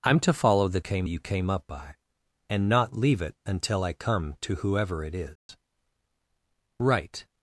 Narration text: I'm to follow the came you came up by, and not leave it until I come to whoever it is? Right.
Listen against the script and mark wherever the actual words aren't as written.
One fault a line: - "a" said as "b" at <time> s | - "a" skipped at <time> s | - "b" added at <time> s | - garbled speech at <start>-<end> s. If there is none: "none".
none